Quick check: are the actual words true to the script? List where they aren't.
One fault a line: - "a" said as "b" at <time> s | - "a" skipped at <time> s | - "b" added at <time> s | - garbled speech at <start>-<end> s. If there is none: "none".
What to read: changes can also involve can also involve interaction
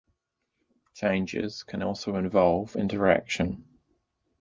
- "can also involve" skipped at 2.8 s